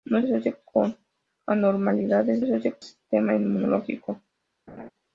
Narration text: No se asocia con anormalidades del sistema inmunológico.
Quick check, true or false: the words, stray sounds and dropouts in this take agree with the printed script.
false